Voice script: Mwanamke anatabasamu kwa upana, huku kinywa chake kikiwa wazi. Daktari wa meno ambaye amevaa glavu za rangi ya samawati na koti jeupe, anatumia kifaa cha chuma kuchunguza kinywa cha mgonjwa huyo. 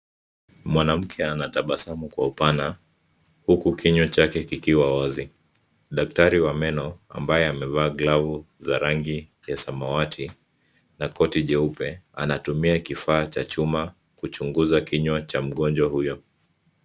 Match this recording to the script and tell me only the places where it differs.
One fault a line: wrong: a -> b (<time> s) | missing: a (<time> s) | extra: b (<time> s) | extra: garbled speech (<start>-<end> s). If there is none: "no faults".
no faults